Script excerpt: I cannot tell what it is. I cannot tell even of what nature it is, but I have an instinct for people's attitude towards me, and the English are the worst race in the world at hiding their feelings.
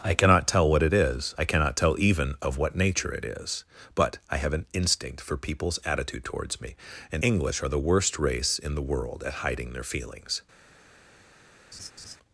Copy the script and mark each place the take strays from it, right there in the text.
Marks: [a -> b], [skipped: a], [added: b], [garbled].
I cannot tell what it is. I cannot tell even of what nature it is, but I have an instinct for people's attitude towards me, and [skipped: the] English are the worst race in the world at hiding their feelings.